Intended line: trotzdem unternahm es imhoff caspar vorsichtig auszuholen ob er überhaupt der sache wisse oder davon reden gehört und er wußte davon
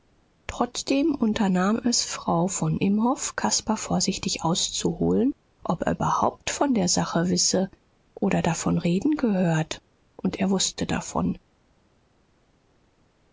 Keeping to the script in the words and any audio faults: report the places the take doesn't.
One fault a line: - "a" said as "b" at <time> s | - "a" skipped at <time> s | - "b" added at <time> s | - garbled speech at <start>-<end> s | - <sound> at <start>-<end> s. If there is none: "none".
- "frau von" added at 2.0 s
- "von" added at 6.5 s